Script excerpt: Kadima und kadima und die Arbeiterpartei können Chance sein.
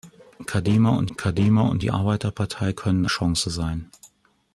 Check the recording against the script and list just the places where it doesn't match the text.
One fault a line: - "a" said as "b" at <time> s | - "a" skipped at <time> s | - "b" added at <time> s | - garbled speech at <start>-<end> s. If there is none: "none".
none